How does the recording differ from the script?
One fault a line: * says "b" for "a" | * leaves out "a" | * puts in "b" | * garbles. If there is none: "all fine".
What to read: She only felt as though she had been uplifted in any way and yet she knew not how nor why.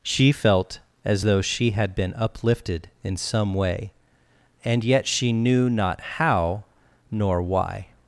* leaves out "only"
* says "some" for "any"